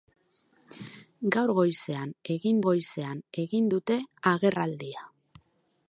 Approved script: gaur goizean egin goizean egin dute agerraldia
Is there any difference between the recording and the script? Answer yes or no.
no